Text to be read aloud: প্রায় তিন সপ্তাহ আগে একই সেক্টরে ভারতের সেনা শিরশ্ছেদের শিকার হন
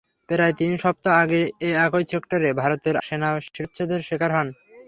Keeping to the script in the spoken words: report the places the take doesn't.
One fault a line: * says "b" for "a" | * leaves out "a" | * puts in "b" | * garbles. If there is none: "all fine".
all fine